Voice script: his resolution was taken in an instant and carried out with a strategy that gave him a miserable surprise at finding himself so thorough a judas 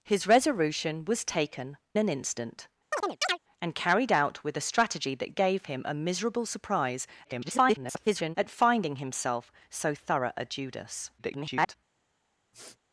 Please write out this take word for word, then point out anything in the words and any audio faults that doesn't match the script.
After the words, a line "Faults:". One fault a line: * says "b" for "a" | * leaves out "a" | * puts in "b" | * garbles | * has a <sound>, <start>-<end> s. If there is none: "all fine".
his resolution was taken an instant and carried out with a strategy that gave him a miserable surprise [garbled] at finding himself so thorough a judas [garbled]
Faults:
* leaves out "in"
* has a chirp, 2.9-3.4 s
* garbles
* garbles
* has a sniff, 12.5-12.8 s